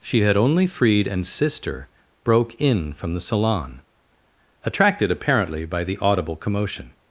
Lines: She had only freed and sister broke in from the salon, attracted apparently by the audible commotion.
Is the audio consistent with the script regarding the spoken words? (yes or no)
yes